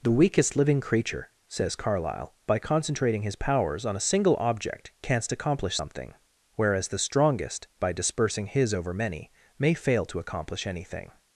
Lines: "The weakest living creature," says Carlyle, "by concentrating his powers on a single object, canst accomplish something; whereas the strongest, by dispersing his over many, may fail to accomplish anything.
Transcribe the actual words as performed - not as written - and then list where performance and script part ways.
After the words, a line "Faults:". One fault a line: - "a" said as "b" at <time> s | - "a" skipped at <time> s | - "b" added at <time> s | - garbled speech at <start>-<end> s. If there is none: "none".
"The weakest living creature," says Carlyle, "by concentrating his powers on a single object, canst accomplish something; whereas the strongest, by dispersing his over many, may fail to accomplish anything.
Faults:
none